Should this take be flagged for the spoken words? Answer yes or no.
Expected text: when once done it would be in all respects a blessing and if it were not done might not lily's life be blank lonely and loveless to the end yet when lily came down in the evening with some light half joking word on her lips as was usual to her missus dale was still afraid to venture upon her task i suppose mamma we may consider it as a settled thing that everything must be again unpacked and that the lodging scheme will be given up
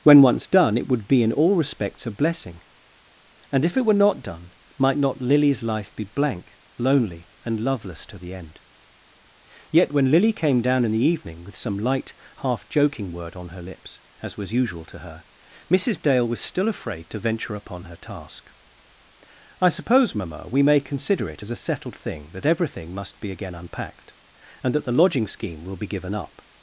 no